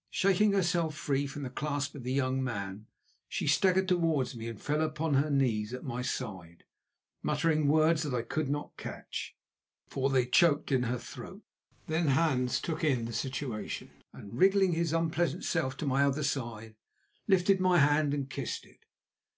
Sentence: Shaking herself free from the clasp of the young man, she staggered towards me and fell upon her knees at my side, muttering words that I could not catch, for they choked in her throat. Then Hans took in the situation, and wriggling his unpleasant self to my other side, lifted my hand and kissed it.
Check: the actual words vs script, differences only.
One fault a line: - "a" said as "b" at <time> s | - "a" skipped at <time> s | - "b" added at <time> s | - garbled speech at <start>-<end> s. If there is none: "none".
none